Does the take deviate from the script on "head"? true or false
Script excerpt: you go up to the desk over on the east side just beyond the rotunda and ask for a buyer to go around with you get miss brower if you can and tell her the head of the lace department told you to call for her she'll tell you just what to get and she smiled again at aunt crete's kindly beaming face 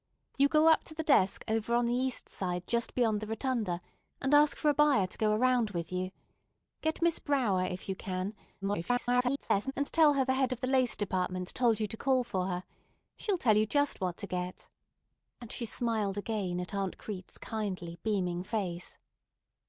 false